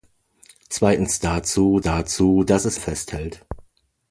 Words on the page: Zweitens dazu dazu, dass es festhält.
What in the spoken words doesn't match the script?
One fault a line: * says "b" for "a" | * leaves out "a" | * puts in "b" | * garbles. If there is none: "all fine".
all fine